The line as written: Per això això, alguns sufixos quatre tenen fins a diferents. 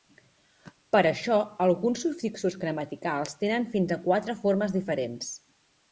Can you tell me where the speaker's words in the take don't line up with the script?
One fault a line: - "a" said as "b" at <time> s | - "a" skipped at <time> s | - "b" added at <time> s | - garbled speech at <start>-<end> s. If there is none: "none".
- "això" skipped at 1.4 s
- "quatre" said as "gramaticals" at 2.6 s
- "quatre formes" added at 4.1 s